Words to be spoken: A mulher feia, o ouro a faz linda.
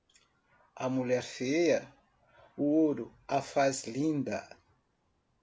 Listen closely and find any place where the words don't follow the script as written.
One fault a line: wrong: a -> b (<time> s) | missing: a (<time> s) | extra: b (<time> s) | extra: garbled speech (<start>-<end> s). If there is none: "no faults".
no faults